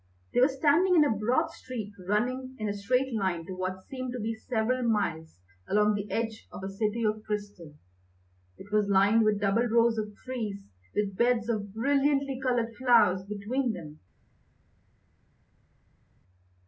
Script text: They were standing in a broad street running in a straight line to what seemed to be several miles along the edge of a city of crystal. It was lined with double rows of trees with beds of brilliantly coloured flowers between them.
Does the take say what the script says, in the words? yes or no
yes